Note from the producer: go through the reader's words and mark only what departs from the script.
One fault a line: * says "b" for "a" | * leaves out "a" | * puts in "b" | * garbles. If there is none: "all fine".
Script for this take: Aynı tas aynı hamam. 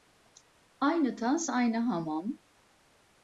all fine